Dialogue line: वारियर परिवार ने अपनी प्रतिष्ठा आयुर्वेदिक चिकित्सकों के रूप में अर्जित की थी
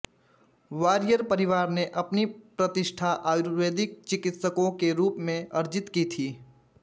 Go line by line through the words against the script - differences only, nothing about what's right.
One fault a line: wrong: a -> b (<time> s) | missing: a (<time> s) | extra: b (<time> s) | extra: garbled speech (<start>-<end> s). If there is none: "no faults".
no faults